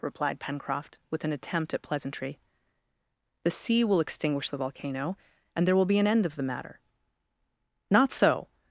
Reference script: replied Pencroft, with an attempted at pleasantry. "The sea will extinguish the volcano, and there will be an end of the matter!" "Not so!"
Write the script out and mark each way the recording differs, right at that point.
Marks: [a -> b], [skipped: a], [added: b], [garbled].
replied Pencroft, with an [attempted -> attempt] at pleasantry. "The sea will extinguish the volcano, and there will be an end of the matter!" "Not so!"